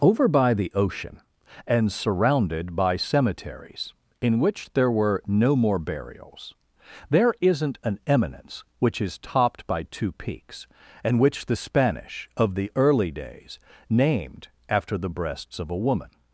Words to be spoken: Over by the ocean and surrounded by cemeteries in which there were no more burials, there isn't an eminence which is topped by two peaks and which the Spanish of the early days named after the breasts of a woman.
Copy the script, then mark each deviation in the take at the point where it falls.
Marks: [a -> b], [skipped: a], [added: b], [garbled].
Over by the ocean and surrounded by cemeteries in which there were no more burials, there isn't an eminence which is topped by two peaks and which the Spanish of the early days named after the breasts of a woman.